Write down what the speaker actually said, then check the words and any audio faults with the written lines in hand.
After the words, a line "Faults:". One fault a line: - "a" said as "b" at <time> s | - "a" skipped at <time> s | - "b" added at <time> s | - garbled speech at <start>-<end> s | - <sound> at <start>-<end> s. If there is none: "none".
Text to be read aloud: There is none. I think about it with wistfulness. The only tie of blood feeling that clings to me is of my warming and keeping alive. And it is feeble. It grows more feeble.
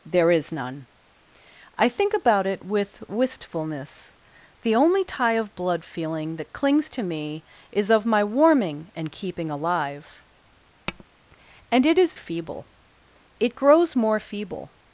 There is none. I think about it with wistfulness. The only tie of blood feeling that clings to me is of my warming and keeping alive. And it is feeble. It grows more feeble.
Faults:
- tap at 10.9-11.1 s